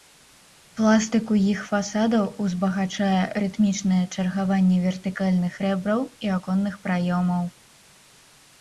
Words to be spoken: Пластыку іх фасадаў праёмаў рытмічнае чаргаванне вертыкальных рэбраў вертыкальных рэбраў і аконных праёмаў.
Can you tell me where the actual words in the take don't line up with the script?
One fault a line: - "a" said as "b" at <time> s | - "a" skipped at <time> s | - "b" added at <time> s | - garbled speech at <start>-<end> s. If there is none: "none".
- "праёмаў" said as "узбагачае" at 2.5 s
- "вертыкальных рэбраў" skipped at 6.0 s